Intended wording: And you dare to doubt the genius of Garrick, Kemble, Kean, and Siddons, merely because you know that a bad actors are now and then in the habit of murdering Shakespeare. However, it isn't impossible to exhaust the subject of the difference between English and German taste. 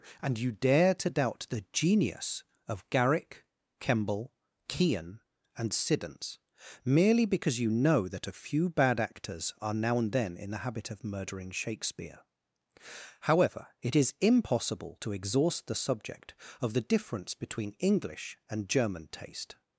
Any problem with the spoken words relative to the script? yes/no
yes